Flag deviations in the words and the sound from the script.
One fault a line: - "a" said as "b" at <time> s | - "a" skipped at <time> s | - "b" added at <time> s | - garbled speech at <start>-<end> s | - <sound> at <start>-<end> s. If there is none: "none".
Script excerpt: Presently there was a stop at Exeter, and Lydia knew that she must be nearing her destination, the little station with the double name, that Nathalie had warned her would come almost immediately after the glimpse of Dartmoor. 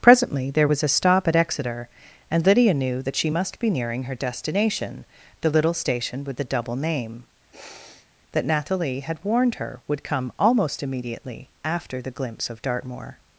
- sniff at 7.5-8.1 s